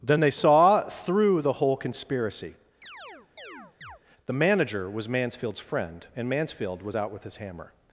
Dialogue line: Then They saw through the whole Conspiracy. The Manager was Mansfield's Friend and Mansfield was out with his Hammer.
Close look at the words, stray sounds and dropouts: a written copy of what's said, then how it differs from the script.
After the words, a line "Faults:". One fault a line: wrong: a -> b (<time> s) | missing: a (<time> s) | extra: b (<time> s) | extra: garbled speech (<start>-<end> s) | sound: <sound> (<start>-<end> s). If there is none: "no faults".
Then They saw through the whole Conspiracy. The Manager was Mansfield's Friend and Mansfield was out with his Hammer.
Faults:
sound: chirp (2.8-4.0 s)